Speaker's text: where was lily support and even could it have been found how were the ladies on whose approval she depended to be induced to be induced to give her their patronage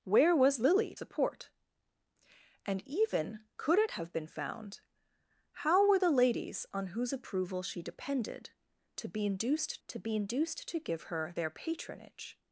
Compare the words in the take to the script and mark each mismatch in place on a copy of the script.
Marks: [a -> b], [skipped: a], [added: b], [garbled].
where was lily support and even could it have been found how were the ladies on whose approval she depended to be induced to be induced to give her their patronage